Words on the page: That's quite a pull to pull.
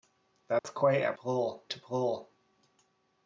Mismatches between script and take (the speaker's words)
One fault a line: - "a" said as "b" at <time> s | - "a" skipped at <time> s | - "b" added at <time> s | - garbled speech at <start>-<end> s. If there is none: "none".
none